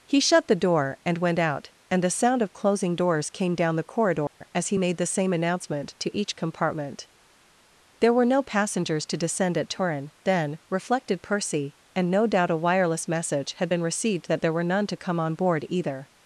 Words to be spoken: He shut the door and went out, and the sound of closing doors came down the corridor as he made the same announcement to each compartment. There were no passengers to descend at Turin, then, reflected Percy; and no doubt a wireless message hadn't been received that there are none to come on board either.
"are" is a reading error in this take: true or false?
true